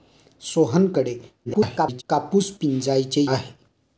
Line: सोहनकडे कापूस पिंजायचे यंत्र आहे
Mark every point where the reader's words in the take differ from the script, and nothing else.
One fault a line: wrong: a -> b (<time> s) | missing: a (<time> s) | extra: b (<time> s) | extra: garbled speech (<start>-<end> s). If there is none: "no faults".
extra: garbled speech (1.4-2.0 s)
missing: यंत्र (3.2 s)